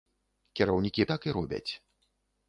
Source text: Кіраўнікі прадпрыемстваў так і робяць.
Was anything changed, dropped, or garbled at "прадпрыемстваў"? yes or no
yes